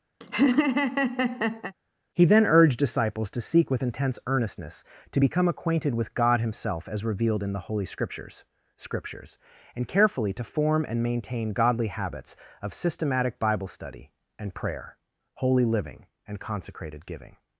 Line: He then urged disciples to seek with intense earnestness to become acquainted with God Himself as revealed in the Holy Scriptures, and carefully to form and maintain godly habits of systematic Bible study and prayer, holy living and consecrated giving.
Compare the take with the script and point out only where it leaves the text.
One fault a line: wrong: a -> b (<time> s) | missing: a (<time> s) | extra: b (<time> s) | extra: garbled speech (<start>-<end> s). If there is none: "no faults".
extra: Scriptures (8.8 s)